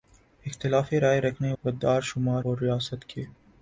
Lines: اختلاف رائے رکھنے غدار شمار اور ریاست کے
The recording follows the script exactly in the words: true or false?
true